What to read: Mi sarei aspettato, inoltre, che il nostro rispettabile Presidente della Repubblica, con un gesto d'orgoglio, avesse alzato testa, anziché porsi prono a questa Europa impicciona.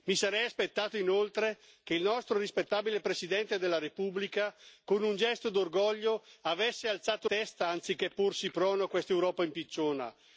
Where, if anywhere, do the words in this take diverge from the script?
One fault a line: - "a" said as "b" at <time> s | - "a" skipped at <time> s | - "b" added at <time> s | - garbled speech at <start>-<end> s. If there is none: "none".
none